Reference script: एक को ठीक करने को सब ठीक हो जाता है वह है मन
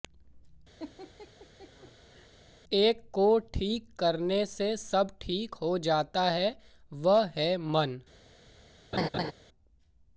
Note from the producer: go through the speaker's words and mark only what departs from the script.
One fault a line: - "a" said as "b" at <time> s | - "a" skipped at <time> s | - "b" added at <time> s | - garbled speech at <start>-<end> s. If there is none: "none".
- "को" said as "से" at 4.5 s